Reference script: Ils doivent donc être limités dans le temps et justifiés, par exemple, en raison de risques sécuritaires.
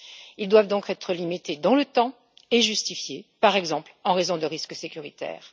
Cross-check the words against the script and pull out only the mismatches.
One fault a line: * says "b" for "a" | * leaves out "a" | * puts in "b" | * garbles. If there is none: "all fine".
all fine